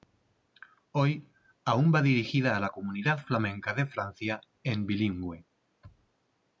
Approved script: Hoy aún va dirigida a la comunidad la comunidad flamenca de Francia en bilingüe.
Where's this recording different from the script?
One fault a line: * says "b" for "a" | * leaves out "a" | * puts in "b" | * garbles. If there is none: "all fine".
* leaves out "la comunidad"